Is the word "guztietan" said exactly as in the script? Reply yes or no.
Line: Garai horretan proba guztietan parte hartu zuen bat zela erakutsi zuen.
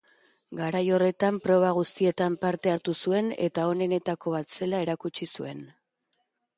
yes